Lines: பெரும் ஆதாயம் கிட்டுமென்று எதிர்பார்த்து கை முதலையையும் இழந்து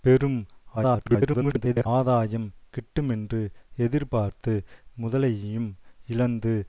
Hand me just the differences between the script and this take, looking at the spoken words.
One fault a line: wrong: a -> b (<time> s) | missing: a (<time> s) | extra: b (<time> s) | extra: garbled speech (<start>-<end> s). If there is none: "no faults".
extra: garbled speech (0.8-1.9 s)
missing: கை (4.5 s)